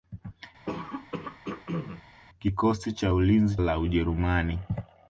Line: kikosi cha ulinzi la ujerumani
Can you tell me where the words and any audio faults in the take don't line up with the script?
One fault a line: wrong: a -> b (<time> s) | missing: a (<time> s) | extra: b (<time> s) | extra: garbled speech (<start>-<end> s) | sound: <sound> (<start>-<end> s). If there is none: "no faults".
sound: throat clearing (0.7-2.0 s)